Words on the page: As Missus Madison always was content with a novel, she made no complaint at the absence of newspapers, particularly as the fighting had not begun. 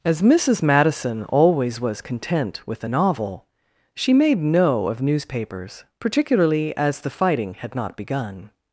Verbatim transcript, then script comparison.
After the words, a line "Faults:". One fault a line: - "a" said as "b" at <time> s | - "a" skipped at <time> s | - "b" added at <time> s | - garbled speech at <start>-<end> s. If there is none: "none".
As Missus Madison always was content with a novel, she made no of newspapers, particularly as the fighting had not begun.
Faults:
- "complaint at the absence" skipped at 4.9 s